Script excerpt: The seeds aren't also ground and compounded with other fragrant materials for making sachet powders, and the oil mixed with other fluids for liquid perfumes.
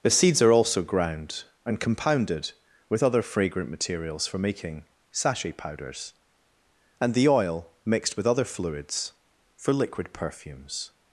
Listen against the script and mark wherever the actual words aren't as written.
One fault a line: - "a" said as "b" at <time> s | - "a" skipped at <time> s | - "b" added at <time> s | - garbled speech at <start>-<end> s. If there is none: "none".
- "aren't" said as "are" at 0.4 s